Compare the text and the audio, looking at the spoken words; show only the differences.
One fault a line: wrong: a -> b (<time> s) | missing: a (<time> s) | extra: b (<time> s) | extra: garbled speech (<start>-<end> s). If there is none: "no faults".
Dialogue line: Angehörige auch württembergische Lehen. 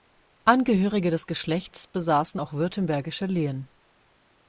extra: des Geschlechts besaßen (1.1 s)